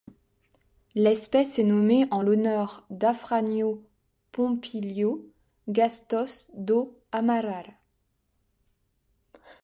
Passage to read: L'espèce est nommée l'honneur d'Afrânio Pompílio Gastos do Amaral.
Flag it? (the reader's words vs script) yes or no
yes